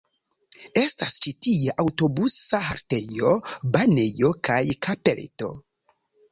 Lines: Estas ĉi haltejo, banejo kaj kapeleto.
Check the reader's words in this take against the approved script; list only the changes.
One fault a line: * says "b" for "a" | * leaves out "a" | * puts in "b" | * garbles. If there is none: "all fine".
* puts in "tie aŭtobusa"